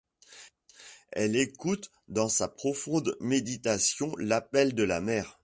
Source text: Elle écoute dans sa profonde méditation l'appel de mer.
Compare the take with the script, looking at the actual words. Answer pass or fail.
fail